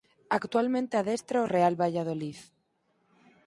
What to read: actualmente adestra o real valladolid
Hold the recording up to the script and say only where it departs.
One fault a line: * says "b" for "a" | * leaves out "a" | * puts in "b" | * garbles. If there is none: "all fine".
all fine